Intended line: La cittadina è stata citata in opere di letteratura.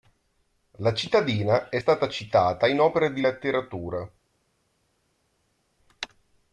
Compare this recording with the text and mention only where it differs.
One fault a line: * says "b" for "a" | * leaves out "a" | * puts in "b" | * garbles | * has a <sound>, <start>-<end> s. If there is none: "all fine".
all fine